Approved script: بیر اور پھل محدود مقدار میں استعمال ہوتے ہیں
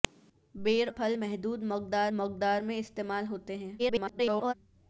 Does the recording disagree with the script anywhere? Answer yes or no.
yes